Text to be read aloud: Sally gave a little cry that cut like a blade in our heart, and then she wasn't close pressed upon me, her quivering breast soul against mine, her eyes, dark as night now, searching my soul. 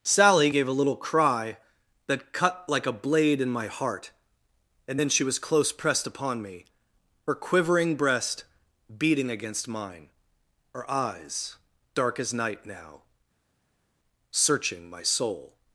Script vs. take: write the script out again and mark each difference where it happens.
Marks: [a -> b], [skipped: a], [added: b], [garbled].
Sally gave a little cry that cut like a blade in [our -> my] heart, and then she [wasn't -> was] close pressed upon me, her quivering breast [soul -> beating] against mine, her eyes, dark as night now, searching my soul.